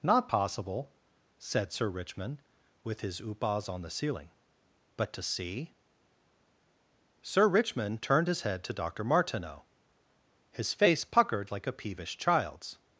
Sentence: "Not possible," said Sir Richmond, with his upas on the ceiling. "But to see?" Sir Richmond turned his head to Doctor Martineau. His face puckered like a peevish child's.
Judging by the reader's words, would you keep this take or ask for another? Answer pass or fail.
pass